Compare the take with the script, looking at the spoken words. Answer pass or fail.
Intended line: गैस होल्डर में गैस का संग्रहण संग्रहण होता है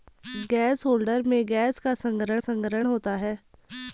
pass